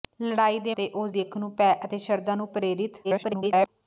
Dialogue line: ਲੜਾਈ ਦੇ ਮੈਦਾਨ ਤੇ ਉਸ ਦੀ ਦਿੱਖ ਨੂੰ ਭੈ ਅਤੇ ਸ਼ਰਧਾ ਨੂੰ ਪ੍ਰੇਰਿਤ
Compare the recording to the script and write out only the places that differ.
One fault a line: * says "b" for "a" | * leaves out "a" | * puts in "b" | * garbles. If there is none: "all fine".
* leaves out "ਮੈਦਾਨ"
* leaves out "ਦੀ"
* garbles